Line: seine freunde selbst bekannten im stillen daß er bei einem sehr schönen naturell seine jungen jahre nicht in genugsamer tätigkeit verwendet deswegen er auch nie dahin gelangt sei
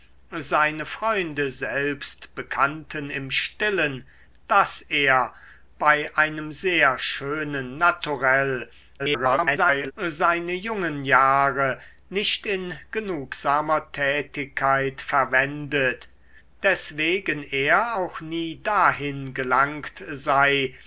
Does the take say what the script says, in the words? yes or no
no